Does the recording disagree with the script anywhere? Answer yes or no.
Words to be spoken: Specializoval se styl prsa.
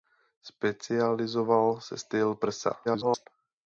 yes